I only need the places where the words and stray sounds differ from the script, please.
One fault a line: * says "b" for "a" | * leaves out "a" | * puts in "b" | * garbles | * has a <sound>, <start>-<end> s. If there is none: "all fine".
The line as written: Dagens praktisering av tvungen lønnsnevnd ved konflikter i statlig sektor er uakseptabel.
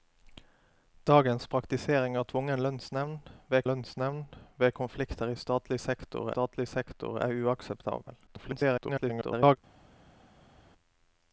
* puts in "lønnsnevnd ved"
* puts in "statlig sektor"
* garbles